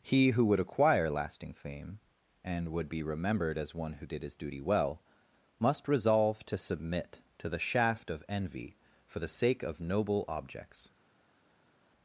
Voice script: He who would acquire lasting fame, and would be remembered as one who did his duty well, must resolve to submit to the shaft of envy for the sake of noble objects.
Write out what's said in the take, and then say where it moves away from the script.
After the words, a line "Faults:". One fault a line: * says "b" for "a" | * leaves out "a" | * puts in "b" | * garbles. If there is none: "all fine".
He who would acquire lasting fame, and would be remembered as one who did his duty well, must resolve to submit to the shaft of envy for the sake of noble objects.
Faults:
all fine